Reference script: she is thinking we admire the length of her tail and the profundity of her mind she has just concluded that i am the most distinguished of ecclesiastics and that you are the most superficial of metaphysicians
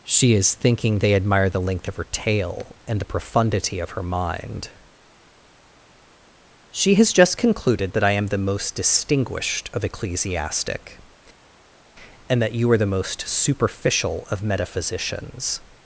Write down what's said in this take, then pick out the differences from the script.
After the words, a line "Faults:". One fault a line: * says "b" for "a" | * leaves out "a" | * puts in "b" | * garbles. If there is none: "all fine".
she is thinking they admire the length of her tail and the profundity of her mind she has just concluded that i am the most distinguished of ecclesiastic and that you are the most superficial of metaphysicians
Faults:
* says "they" for "we"
* says "ecclesiastic" for "ecclesiastics"